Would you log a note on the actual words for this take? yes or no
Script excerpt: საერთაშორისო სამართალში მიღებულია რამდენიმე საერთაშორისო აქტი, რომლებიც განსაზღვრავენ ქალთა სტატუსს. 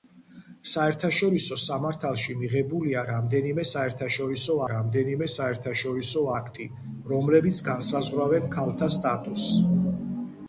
yes